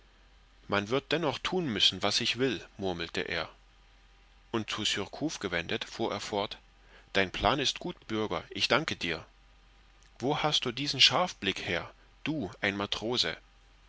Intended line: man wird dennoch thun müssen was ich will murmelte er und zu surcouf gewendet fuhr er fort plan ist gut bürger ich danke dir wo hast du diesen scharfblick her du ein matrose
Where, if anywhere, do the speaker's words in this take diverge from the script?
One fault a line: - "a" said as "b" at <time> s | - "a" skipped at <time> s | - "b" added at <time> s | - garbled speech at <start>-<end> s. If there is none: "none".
- "dein" added at 7.1 s